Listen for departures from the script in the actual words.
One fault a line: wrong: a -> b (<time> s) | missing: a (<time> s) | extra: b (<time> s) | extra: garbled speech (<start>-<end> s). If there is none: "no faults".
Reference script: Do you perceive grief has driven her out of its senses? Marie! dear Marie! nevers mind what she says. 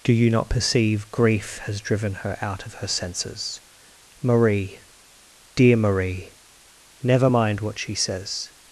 extra: not (0.3 s)
wrong: its -> her (2.7 s)
wrong: nevers -> never (7.0 s)